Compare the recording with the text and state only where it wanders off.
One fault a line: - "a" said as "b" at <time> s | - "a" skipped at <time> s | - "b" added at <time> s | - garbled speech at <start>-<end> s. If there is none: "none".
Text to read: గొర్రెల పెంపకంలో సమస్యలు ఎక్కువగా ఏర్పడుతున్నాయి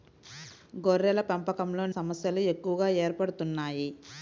none